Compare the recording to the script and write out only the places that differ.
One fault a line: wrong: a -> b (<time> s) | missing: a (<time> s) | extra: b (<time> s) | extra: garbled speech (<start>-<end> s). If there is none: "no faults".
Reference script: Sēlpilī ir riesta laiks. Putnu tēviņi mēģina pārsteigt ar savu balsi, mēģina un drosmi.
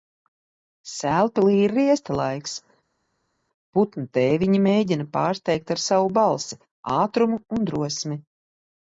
wrong: mēģina -> ātrumu (7.0 s)